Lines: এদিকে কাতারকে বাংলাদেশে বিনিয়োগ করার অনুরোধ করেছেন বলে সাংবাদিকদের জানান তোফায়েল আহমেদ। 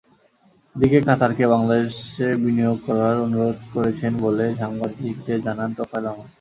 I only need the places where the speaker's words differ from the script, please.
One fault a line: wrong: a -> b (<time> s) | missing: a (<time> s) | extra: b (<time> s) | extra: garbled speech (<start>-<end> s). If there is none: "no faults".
no faults